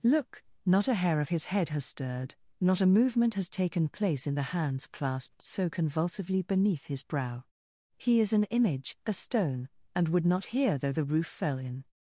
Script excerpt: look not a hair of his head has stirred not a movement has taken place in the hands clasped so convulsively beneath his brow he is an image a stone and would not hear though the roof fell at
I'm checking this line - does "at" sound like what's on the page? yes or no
no